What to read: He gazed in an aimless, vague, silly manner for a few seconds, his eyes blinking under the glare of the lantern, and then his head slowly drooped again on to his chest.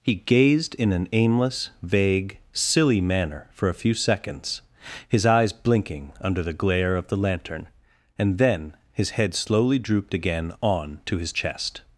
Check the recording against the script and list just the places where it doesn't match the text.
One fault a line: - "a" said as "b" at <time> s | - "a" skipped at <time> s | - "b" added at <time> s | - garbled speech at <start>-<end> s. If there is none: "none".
none